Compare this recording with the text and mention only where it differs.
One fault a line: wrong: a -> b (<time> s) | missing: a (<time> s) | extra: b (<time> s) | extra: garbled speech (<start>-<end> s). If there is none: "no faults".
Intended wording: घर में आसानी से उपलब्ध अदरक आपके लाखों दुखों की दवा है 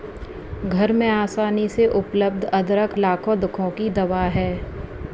missing: आपके (3.0 s)